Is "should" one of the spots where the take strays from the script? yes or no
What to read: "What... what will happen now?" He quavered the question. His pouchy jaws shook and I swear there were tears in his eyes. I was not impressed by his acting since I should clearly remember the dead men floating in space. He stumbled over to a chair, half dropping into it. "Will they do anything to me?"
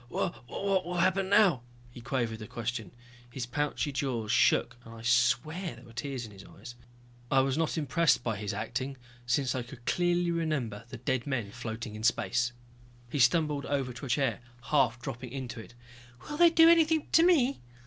yes